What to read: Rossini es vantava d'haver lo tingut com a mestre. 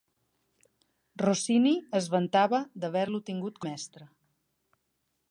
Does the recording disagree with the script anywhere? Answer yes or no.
yes